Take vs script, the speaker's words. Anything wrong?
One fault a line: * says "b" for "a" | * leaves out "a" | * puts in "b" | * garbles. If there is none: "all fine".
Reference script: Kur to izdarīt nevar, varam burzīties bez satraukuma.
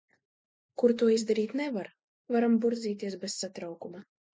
all fine